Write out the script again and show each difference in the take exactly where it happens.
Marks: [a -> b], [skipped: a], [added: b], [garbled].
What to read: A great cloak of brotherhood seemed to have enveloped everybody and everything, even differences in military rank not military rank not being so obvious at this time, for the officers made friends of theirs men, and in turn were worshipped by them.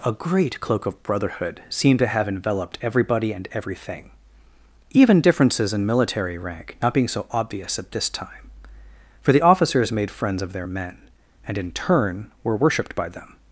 A great cloak of brotherhood seemed to have enveloped everybody and everything, even differences in military rank not [skipped: military rank not] being so obvious at this time, for the officers made friends of [theirs -> their] men, and in turn were worshipped by them.